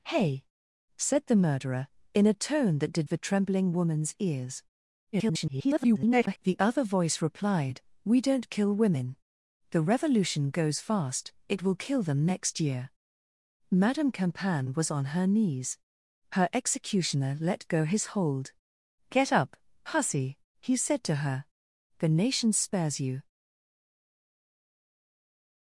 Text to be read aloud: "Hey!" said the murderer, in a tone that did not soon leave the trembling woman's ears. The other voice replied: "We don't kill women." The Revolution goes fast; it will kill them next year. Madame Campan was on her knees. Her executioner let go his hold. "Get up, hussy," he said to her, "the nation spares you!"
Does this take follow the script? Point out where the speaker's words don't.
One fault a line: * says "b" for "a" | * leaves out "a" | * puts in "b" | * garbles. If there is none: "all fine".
* leaves out "not soon leave"
* garbles